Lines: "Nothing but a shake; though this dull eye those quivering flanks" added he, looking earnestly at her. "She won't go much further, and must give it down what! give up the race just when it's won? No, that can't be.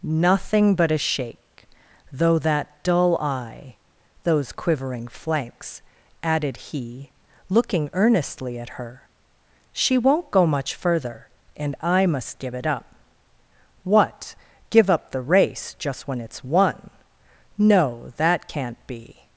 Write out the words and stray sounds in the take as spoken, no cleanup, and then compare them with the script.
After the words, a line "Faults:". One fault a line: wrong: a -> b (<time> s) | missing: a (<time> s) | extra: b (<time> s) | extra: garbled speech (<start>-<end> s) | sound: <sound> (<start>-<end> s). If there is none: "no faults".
"Nothing but a shake; though that dull eye those quivering flanks" added he, looking earnestly at her. "She won't go much further, and I must give it up what! give up the race just when it's won? No, that can't be.
Faults:
wrong: this -> that (2.4 s)
extra: I (11.8 s)
wrong: down -> up (12.7 s)